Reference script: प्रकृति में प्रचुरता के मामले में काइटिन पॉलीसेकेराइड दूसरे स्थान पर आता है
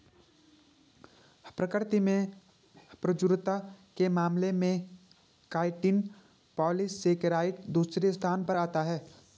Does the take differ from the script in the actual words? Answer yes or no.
no